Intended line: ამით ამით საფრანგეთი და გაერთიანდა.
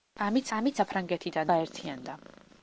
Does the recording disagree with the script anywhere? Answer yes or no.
no